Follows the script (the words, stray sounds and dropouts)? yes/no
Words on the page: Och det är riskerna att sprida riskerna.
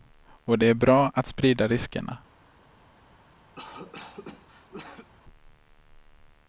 no